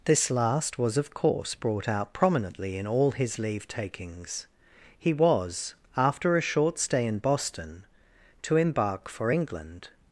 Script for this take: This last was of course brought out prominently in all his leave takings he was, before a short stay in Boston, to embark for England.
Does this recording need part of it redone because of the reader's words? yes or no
yes